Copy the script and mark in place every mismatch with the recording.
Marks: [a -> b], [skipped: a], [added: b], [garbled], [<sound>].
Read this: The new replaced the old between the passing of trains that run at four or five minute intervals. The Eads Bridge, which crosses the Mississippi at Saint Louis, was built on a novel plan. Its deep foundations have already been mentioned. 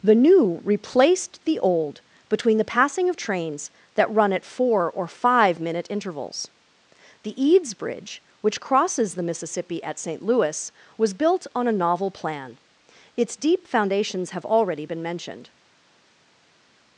The new replaced the old between the passing of trains that run at four or five minute intervals. The Eads Bridge, which crosses the Mississippi at Saint Louis, was built on a novel plan. Its deep foundations have already been mentioned.